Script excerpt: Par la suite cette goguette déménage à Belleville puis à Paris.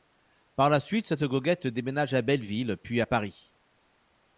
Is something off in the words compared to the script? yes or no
no